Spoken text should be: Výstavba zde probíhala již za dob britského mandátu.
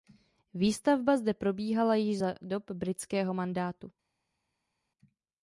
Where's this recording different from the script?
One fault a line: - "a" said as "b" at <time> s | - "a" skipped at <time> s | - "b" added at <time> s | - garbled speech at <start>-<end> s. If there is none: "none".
none